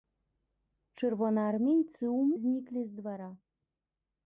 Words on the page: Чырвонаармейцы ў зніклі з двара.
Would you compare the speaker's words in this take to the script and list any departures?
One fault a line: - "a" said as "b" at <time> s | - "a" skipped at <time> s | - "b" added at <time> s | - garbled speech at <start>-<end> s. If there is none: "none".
none